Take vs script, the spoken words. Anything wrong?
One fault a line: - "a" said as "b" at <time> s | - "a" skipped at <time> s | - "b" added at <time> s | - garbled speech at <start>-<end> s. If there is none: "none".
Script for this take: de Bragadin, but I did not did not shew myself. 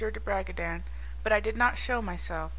- "did not" skipped at 1.8 s